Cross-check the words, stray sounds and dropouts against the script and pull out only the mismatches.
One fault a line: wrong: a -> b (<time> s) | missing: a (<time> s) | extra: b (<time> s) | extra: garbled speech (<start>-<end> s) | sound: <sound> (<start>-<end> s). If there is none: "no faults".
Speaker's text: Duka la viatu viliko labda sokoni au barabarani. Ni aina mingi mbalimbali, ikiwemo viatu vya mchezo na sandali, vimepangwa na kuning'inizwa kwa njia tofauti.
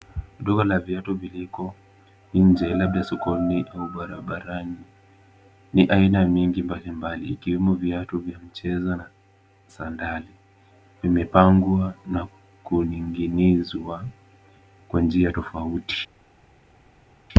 extra: nje (2.3 s)